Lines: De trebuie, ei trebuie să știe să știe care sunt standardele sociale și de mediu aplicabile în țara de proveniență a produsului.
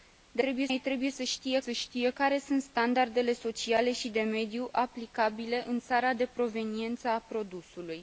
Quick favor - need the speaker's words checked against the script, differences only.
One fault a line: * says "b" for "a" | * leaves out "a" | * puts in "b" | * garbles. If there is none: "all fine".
all fine